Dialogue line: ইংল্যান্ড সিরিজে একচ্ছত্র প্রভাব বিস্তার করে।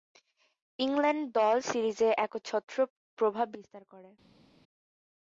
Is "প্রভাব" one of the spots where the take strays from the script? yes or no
no